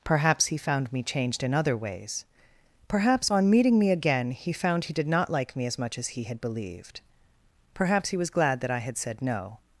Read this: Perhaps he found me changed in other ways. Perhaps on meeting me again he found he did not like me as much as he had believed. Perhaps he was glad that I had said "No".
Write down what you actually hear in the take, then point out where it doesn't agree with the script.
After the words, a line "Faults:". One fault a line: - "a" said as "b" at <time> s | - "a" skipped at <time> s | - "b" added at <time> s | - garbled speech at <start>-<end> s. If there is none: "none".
Perhaps he found me changed in other ways. Perhaps on meeting me again he found he did not like me as much as he had believed. Perhaps he was glad that I had said "No".
Faults:
none